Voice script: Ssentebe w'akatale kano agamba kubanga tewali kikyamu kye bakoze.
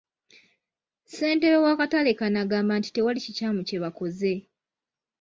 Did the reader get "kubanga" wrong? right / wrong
wrong